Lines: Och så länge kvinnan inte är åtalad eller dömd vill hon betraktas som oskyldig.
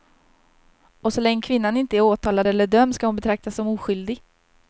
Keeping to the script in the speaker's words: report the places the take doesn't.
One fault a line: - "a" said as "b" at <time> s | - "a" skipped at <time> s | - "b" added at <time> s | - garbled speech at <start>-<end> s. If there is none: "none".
- "vill" said as "ska" at 2.9 s